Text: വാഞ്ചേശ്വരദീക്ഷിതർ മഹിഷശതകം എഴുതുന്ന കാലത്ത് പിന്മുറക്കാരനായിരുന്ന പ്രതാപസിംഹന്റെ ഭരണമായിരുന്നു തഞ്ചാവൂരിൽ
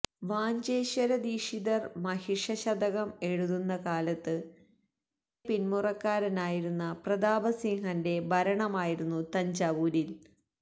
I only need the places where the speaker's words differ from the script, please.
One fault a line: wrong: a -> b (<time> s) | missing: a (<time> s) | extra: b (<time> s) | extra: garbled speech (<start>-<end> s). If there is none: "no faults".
no faults